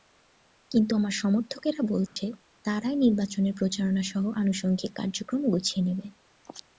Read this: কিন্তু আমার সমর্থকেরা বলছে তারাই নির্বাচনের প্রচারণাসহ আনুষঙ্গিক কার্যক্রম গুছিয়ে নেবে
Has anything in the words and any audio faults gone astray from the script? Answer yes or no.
yes